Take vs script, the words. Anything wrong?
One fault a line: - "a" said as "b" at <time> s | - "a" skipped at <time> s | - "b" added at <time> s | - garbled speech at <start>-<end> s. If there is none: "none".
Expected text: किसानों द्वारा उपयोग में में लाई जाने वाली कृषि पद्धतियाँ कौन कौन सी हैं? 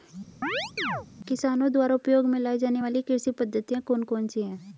- "में" skipped at 2.4 s